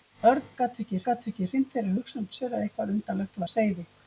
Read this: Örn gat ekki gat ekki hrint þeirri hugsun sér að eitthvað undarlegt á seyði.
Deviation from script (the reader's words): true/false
false